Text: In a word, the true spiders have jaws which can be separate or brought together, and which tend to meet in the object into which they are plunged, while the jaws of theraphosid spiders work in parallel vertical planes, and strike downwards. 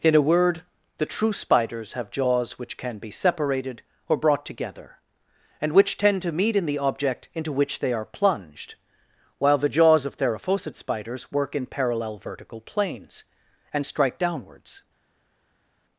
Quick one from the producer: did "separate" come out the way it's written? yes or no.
no